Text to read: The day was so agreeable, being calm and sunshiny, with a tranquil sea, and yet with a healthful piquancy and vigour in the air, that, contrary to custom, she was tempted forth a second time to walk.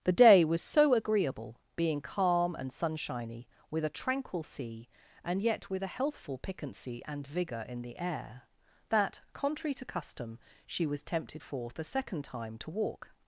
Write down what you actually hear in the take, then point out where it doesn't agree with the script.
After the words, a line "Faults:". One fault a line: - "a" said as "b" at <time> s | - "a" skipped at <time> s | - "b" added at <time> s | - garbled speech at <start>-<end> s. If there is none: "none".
The day was so agreeable, being calm and sunshiny, with a tranquil sea, and yet with a healthful piquancy and vigour in the air, that, contrary to custom, she was tempted forth a second time to walk.
Faults:
none